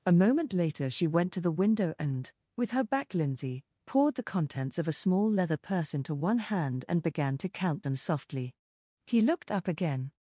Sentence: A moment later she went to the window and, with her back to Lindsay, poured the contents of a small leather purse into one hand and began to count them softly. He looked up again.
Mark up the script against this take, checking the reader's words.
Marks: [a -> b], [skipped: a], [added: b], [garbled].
A moment later she went to the window and, with her back [skipped: to] Lindsay, poured the contents of a small leather purse into one hand and began to count them softly. He looked up again.